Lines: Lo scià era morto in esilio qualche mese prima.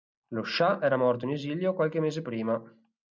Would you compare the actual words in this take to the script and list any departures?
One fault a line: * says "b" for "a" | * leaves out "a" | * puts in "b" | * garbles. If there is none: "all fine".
all fine